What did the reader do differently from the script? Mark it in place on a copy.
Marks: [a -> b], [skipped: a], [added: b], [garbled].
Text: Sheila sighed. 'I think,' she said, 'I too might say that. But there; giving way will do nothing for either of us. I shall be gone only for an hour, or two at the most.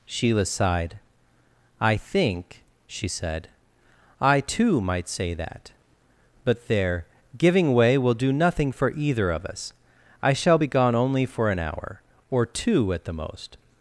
Sheila sighed. 'I think,' she said, 'I too might say that. But there; giving way will do nothing for either of us. I shall be gone only for an hour, or two at the most.